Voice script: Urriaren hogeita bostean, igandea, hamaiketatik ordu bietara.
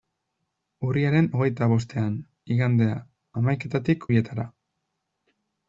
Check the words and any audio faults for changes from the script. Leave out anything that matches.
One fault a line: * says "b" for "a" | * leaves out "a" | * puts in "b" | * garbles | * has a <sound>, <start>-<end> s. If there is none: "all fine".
* leaves out "ordu"